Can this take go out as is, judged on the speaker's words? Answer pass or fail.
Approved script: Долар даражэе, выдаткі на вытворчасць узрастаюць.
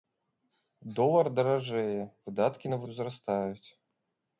fail